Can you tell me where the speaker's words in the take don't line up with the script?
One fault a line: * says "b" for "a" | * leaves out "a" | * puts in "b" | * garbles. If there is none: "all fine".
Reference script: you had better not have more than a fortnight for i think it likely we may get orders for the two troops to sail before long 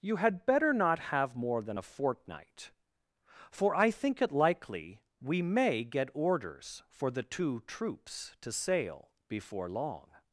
all fine